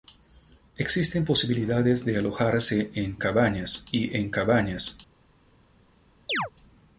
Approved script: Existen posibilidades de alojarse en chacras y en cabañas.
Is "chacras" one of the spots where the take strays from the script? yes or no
yes